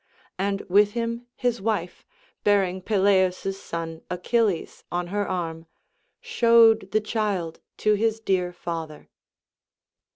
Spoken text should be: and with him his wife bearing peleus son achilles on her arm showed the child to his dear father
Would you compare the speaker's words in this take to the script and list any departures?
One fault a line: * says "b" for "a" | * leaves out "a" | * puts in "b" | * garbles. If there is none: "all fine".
all fine